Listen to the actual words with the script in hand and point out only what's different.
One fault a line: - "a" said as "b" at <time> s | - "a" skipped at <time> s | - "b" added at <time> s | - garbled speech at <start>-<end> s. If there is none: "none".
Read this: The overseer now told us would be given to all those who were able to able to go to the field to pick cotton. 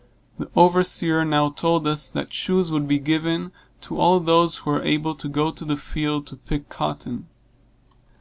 - "that shoes" added at 2.1 s
- "able to" skipped at 5.3 s